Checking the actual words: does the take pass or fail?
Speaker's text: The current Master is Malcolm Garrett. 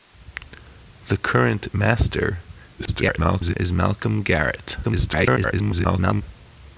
fail